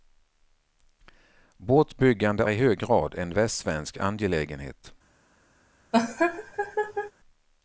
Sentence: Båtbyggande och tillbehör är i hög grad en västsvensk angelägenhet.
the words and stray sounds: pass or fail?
fail